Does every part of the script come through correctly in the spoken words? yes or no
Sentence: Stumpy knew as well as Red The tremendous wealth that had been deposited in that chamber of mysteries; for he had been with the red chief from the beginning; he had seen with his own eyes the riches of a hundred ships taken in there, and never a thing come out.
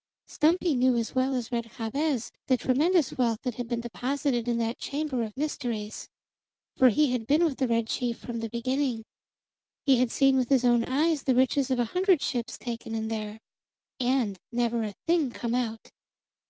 no